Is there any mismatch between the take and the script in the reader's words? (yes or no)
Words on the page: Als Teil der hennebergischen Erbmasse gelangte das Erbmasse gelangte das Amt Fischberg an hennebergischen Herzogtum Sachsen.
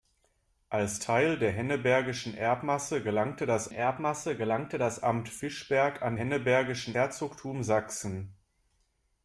no